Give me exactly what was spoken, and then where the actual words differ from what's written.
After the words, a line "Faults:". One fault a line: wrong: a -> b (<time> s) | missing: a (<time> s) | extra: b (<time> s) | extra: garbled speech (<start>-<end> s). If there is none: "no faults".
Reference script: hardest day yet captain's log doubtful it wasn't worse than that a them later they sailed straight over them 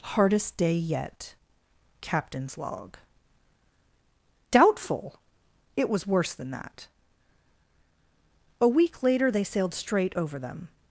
hardest day yet captain's log doubtful it was worse than that a week later they sailed straight over them
Faults:
wrong: wasn't -> was (5.9 s)
wrong: them -> week (8.7 s)